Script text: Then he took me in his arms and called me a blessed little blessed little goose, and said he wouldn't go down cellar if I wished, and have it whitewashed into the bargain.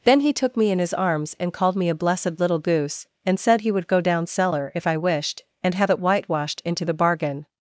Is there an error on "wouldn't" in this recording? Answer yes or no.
yes